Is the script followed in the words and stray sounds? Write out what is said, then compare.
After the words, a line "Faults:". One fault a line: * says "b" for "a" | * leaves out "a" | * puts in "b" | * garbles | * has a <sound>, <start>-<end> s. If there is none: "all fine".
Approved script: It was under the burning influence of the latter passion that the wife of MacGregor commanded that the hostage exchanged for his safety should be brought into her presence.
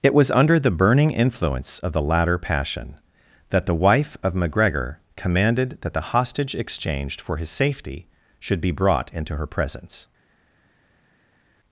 It was under the burning influence of the latter passion that the wife of MacGregor commanded that the hostage exchanged for his safety should be brought into her presence.
Faults:
all fine